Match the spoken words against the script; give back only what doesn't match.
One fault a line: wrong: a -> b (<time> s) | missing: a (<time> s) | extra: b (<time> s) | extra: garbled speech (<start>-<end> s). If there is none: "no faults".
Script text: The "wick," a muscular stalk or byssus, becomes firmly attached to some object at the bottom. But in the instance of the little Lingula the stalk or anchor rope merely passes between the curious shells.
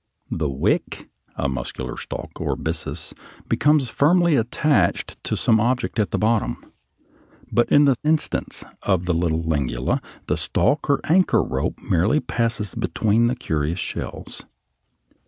no faults